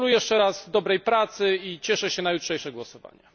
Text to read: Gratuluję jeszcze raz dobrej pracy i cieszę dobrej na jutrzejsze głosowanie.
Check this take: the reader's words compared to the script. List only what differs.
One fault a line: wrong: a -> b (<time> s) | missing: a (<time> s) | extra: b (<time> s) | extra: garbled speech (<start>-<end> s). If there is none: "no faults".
wrong: dobrej -> się (2.1 s)